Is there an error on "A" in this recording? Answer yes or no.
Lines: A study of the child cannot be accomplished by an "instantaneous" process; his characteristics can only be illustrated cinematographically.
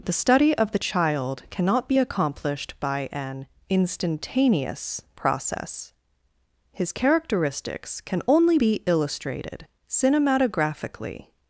yes